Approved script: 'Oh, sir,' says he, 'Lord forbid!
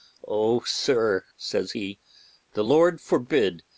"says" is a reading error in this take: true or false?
false